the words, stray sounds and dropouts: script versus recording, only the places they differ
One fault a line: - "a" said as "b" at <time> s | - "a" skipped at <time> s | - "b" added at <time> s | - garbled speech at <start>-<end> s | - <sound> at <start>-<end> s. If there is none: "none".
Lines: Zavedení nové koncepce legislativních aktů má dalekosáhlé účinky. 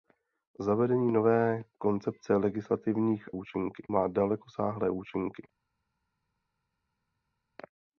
- "aktů" said as "účinky" at 3.3 s